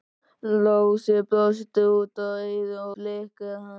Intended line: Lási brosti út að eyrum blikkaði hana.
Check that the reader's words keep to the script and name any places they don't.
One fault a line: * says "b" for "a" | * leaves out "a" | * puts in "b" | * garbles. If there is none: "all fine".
all fine